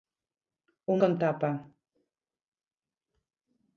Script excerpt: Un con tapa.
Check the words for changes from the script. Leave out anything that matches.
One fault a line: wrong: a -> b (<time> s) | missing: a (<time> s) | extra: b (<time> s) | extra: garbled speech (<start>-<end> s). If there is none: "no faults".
no faults